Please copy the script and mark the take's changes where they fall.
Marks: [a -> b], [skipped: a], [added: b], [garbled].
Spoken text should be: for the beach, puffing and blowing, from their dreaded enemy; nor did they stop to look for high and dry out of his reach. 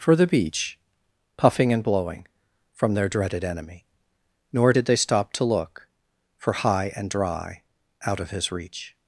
for the beach, puffing and blowing, from their dreaded enemy; nor did they stop to look for high and dry out of his reach.